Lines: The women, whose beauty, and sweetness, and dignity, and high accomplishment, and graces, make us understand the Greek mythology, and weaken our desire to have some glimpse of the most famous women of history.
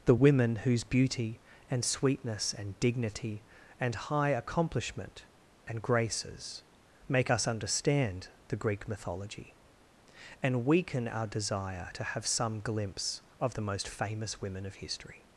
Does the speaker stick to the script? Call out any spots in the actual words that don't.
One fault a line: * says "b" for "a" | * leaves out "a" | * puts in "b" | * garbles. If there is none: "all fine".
all fine